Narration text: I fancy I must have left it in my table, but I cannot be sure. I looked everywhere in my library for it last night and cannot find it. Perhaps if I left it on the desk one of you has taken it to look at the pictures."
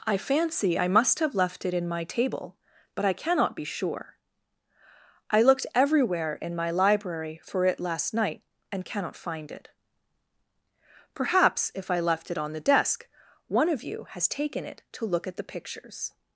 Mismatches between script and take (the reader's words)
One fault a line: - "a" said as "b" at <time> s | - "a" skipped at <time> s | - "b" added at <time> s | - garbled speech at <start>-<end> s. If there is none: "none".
none